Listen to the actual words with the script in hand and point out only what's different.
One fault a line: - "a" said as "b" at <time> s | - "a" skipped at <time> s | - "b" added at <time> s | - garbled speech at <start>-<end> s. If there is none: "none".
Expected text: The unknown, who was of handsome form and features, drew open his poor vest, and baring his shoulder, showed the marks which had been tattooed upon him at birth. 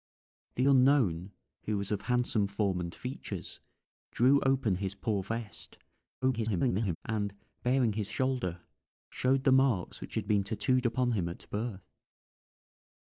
- garbled speech at 6.2-7.0 s